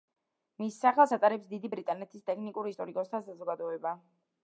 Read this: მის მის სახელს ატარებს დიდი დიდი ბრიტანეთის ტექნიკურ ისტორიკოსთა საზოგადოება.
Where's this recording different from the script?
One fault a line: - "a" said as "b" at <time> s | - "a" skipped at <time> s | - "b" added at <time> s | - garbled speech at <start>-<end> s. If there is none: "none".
- "მის" skipped at 0.8 s
- "დიდი" skipped at 1.7 s